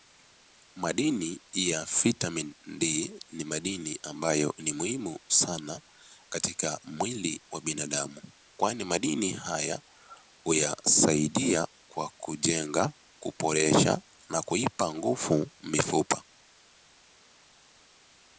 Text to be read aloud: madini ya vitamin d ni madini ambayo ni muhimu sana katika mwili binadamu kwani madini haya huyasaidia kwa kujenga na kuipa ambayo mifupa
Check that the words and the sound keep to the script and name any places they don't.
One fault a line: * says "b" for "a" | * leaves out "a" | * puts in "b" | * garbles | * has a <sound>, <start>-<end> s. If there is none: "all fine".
* puts in "wa"
* puts in "kuboresha"
* says "nguvu" for "ambayo"